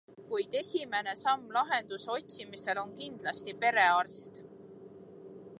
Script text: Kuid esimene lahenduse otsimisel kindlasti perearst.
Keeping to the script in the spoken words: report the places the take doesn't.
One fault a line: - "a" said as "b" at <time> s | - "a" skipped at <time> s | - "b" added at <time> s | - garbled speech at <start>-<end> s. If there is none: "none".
- "samm" added at 1.2 s
- "on" added at 2.8 s